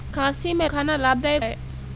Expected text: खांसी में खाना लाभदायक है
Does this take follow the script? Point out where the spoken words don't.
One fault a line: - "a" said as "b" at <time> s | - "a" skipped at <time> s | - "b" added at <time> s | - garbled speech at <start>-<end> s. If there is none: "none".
none